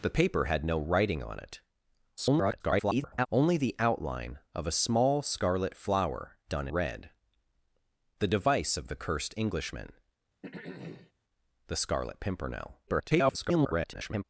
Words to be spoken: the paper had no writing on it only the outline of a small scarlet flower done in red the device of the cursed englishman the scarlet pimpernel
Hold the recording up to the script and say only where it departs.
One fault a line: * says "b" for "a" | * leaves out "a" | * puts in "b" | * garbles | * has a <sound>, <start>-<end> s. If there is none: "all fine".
* garbles
* leaves out "in"
* has a throat clearing, 10.4-11.1 s
* garbles